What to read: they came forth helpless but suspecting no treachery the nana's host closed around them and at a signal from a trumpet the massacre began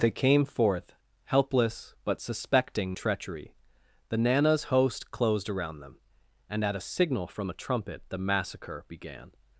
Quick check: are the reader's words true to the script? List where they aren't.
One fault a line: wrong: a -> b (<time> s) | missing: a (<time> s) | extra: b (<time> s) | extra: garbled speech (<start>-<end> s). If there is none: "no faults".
missing: no (3.0 s)